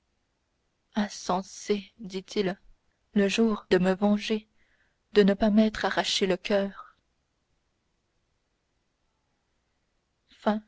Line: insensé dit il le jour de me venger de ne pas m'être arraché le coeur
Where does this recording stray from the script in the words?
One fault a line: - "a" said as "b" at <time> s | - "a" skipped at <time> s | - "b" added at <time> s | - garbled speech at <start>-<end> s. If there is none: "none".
none